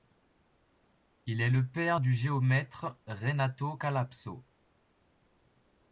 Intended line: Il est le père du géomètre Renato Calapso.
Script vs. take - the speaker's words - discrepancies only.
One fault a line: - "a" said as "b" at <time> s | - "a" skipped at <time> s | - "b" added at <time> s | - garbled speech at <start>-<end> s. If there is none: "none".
none